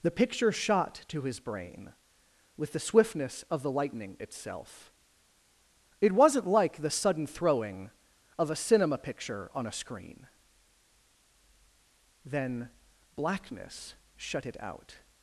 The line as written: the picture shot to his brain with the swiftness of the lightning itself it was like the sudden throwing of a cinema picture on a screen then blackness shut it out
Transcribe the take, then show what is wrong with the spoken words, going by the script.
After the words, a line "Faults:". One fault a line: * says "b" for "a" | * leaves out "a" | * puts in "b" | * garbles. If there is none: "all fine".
the picture shot to his brain with the swiftness of the lightning itself it wasn't like the sudden throwing of a cinema picture on a screen then blackness shut it out
Faults:
* says "wasn't" for "was"